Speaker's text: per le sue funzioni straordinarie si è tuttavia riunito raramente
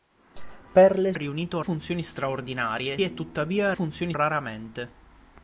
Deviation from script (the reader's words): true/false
true